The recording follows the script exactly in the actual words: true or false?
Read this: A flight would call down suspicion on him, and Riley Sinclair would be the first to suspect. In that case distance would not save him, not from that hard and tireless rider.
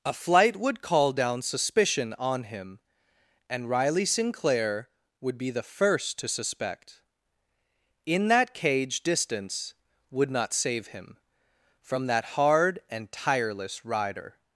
false